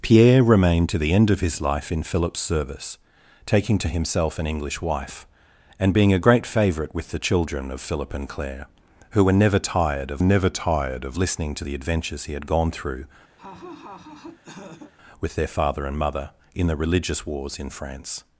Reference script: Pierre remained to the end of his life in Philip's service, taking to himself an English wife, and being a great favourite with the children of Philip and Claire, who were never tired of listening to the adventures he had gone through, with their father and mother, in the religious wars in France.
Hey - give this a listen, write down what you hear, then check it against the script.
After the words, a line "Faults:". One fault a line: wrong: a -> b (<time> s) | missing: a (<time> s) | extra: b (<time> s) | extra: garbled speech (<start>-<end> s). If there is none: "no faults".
Pierre remained to the end of his life in Philip's service, taking to himself an English wife, and being a great favourite with the children of Philip and Claire, who were never tired of never tired of listening to the adventures he had gone through, with their father and mother, in the religious wars in France.
Faults:
extra: never tired of (10.2 s)